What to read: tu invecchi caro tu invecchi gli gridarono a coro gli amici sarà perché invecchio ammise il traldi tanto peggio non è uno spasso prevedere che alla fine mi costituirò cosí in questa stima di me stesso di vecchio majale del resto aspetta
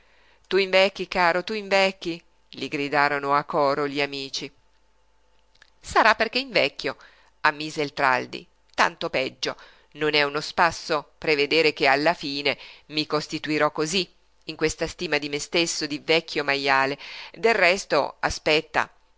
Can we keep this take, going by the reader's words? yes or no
yes